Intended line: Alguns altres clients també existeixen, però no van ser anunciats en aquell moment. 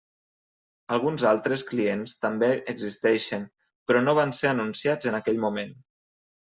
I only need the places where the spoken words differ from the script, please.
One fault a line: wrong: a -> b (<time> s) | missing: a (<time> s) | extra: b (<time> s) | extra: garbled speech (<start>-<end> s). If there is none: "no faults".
no faults